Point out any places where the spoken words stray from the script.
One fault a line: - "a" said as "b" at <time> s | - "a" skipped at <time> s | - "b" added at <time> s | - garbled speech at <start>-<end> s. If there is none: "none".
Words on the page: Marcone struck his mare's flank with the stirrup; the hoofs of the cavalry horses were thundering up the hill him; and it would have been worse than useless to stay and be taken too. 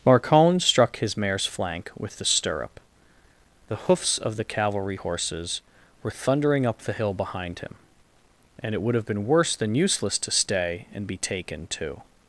- "behind" added at 7.1 s